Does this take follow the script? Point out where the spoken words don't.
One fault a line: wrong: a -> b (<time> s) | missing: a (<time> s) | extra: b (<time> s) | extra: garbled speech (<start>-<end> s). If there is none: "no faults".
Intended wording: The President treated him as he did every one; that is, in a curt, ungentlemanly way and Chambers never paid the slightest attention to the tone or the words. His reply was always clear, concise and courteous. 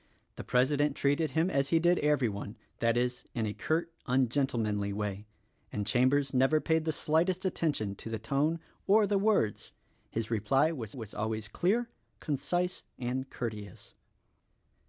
extra: was (10.9 s)